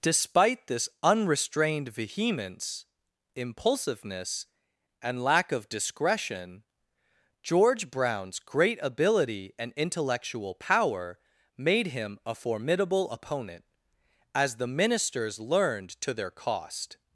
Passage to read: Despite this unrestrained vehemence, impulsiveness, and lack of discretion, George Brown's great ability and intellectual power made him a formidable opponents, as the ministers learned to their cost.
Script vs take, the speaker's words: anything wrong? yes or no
yes